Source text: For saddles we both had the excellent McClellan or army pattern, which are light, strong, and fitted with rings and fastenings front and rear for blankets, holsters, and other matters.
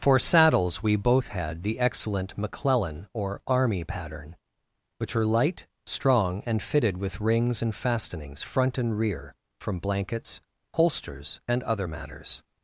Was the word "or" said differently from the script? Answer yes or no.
no